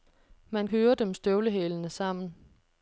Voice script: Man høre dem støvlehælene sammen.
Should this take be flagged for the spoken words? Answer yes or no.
no